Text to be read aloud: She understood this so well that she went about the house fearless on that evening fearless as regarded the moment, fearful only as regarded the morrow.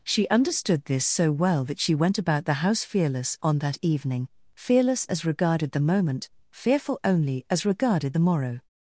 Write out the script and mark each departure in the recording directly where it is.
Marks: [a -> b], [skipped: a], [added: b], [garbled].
She understood this so well that she went about the house fearless on that evening fearless as regarded the moment, fearful only as regarded the morrow.